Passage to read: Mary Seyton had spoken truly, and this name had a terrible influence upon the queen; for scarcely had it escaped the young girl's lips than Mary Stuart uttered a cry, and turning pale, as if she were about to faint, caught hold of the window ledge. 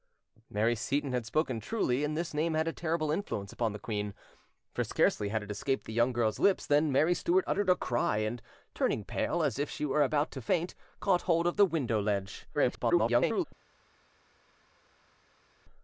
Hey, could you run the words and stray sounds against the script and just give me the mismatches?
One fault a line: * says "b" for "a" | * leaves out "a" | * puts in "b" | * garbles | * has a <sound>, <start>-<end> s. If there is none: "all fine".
* garbles